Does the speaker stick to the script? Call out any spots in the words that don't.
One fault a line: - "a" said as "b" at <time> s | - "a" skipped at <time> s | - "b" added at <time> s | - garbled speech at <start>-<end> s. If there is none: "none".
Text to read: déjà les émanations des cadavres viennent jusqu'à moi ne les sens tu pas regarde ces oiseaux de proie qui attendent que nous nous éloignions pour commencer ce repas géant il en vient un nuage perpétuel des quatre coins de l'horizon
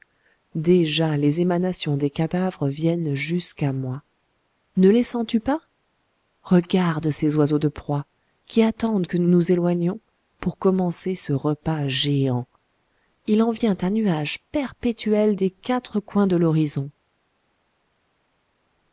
none